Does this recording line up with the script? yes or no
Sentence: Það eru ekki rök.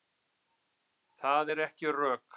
yes